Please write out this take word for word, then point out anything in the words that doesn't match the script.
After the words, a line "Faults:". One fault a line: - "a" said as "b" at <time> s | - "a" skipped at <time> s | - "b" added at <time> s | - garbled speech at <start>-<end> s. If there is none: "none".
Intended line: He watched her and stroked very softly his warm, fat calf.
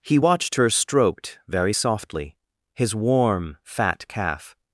He watched her stroked very softly his warm, fat calf.
Faults:
- "and" skipped at 0.7 s